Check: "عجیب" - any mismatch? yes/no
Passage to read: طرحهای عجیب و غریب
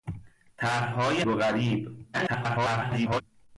yes